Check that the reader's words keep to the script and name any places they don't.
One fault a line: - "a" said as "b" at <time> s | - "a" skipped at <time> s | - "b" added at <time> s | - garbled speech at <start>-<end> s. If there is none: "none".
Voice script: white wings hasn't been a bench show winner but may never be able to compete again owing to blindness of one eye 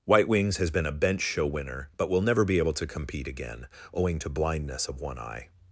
- "hasn't" said as "has" at 0.6 s
- "may" said as "will" at 2.1 s